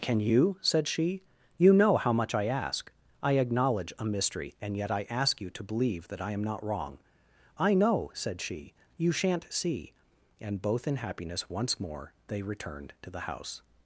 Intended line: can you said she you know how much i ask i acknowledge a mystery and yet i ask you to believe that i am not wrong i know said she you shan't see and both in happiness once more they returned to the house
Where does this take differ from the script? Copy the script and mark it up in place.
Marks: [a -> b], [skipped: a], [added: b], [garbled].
can you said she you know how much i ask i acknowledge a mystery and yet i ask you to believe that i am not wrong i know said she you shan't see and both in happiness once more they returned to the house